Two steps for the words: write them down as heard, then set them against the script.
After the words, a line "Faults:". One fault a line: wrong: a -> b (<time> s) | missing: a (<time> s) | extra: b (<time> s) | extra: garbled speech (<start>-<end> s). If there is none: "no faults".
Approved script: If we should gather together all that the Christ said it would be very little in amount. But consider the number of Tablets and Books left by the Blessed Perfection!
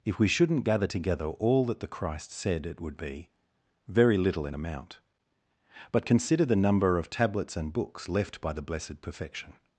If we shouldn't gather together all that the Christ said it would be very little in amount. But consider the number of Tablets and Books left by the Blessed Perfection!
Faults:
wrong: should -> shouldn't (0.3 s)